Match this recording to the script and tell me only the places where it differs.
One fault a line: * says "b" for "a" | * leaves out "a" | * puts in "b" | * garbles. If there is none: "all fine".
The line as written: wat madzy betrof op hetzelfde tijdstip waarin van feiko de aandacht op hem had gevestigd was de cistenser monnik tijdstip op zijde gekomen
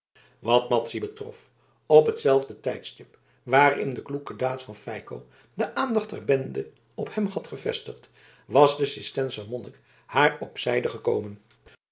* puts in "de kloeke daad"
* puts in "der bende"
* says "haar" for "tijdstip"